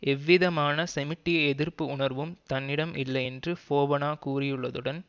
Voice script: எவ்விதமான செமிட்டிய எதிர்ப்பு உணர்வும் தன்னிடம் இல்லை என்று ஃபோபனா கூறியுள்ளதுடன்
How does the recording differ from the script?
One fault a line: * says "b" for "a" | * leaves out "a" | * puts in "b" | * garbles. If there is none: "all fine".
all fine